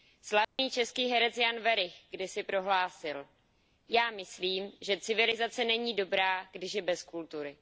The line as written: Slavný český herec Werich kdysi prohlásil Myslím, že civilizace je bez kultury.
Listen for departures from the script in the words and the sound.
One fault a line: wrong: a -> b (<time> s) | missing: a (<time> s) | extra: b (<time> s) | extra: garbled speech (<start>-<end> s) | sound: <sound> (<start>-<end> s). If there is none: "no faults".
sound: dropout (0.4-0.6 s)
extra: Jan (1.4 s)
extra: Já (3.9 s)
extra: není dobrá když (5.7 s)